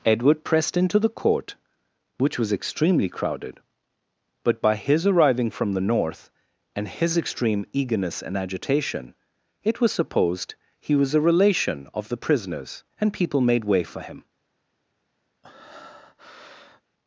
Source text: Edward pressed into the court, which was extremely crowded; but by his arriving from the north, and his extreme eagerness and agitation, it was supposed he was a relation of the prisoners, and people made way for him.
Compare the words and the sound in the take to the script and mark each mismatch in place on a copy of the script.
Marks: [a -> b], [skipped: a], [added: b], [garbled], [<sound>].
Edward pressed into the court, which was extremely crowded; but by his arriving from the north, and his extreme eagerness and agitation, it was supposed he was a relation of the prisoners, and people made way for him. [breath]